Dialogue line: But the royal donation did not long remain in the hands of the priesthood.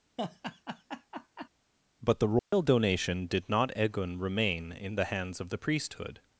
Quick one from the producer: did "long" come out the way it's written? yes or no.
no